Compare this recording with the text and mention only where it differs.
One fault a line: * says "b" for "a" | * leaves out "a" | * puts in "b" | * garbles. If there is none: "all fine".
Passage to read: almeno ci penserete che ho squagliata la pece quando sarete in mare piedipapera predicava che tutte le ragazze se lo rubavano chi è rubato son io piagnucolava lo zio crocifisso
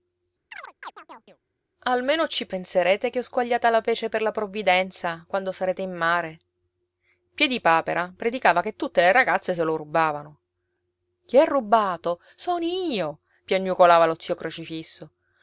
* puts in "per la provvidenza"